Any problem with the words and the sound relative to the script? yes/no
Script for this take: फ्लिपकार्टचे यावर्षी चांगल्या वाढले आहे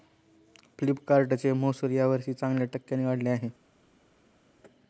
yes